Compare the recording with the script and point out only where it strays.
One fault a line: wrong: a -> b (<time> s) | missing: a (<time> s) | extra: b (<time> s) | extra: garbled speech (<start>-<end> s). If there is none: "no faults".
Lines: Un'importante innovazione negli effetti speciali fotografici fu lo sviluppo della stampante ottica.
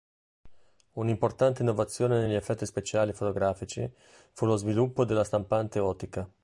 no faults